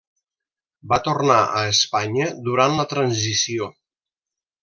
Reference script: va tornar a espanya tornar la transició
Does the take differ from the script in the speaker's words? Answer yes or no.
yes